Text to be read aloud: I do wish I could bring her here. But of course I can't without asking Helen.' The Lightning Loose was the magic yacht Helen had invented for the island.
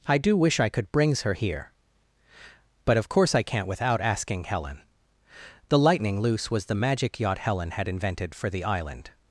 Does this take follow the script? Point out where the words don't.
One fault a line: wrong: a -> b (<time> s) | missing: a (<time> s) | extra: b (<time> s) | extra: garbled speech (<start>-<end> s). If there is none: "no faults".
wrong: bring -> brings (0.9 s)